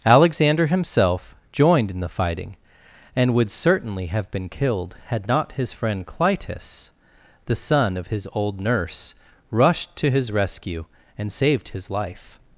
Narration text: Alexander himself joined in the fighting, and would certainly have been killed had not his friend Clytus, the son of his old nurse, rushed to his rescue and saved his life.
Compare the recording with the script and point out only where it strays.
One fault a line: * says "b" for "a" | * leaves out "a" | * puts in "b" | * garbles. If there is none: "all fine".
all fine